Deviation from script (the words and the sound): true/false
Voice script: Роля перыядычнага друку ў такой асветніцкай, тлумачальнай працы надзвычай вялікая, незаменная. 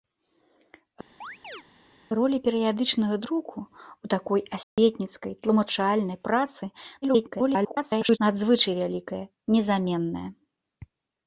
true